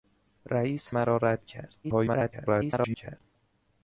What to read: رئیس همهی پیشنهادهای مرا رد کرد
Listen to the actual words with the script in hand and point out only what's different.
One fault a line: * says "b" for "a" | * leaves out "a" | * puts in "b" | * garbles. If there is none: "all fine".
* leaves out "همهی پیشنهادهای"
* garbles